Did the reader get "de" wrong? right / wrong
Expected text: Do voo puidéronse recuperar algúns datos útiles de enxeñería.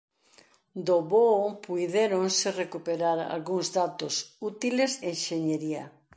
wrong